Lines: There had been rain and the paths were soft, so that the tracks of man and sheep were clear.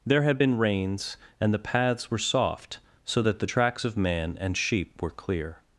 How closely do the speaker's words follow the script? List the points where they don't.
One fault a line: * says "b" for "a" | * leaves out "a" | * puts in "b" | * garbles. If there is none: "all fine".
* says "rains" for "rain"